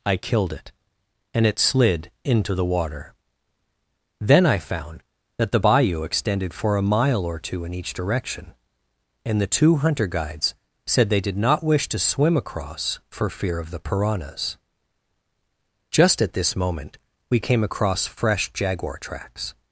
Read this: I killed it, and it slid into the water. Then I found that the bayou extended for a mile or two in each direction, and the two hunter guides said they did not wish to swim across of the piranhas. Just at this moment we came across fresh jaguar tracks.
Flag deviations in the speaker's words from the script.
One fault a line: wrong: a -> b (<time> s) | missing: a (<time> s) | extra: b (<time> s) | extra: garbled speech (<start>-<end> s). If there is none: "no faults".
extra: for fear (13.1 s)